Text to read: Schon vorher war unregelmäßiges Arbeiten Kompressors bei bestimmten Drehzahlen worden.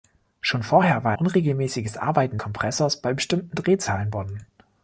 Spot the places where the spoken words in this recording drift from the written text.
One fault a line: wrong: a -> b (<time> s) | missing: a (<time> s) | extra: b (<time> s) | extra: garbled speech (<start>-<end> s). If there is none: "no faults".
no faults